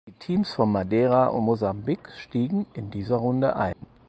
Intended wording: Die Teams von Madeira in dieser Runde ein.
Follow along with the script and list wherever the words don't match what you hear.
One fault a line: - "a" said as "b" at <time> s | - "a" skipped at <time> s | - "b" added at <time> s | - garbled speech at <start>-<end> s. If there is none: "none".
- "und Mosambik stiegen" added at 1.3 s